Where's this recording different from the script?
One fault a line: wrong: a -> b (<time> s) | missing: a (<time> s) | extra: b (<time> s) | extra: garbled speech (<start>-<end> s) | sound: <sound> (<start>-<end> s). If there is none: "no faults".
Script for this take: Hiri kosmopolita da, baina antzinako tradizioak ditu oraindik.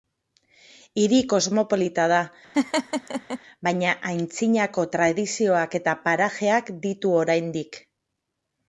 sound: laugh (2.5-3.4 s)
extra: eta parajeak (5.8 s)